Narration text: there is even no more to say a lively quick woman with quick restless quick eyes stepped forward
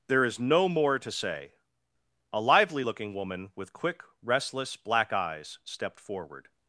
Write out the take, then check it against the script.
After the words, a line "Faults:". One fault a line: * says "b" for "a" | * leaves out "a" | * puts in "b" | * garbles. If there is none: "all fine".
there is no more to say a lively looking woman with quick restless black eyes stepped forward
Faults:
* leaves out "even"
* says "looking" for "quick"
* says "black" for "quick"